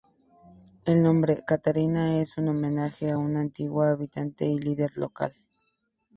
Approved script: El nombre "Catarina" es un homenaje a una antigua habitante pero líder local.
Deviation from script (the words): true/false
true